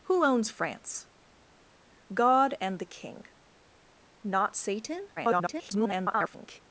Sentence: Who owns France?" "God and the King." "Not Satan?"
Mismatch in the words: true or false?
true